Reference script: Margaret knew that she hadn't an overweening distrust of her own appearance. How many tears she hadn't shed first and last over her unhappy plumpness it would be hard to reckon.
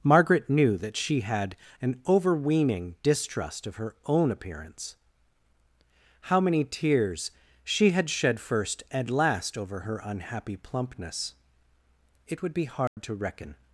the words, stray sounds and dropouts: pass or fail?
fail